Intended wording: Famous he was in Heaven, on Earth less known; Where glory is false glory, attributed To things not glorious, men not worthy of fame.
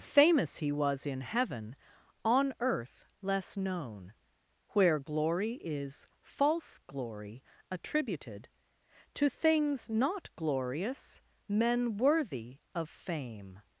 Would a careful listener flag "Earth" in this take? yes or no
no